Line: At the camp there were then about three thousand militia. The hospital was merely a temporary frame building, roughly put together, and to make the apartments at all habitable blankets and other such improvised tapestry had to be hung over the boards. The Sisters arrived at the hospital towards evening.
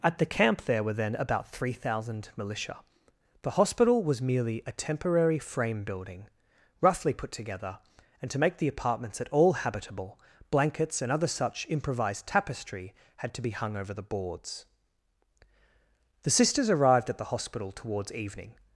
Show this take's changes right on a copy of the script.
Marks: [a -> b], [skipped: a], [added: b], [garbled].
At the camp there were then about three thousand militia. The hospital was merely a temporary frame building, roughly put together, and to make the apartments at all habitable blankets and other such improvised tapestry had to be hung over the boards. The Sisters arrived at the hospital towards evening.